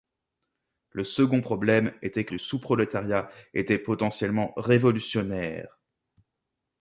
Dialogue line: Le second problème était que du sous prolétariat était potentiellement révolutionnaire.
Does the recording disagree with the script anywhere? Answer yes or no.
no